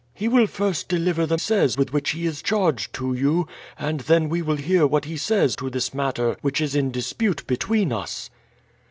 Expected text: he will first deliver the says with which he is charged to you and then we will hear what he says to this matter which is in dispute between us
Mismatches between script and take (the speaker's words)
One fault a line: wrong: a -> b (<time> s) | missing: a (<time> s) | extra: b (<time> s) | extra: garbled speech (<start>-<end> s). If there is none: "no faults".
no faults